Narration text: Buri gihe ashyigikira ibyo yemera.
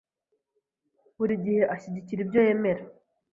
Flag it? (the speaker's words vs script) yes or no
no